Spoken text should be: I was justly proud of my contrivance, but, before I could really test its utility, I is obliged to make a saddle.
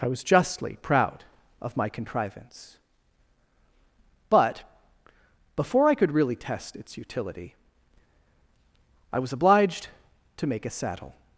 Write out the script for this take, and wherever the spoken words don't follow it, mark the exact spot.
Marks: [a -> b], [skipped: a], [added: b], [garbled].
I was justly proud of my contrivance, but, before I could really test its utility, I [is -> was] obliged to make a saddle.